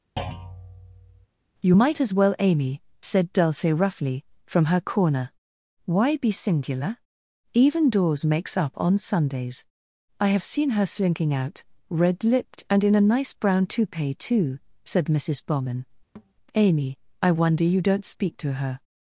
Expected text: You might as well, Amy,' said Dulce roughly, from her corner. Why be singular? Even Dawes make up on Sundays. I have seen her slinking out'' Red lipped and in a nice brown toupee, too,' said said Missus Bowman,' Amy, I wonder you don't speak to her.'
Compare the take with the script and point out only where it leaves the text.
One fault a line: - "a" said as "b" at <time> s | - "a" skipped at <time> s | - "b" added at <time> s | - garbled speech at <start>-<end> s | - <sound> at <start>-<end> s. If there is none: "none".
- thud at 0.2-1.3 s
- "make" said as "makes" at 8.3 s
- "said" skipped at 15.1 s
- thud at 16.1-16.3 s